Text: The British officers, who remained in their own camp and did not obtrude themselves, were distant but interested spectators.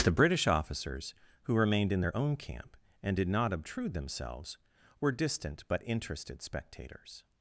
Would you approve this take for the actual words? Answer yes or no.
yes